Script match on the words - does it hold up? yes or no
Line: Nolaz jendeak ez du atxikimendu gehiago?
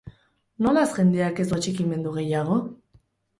yes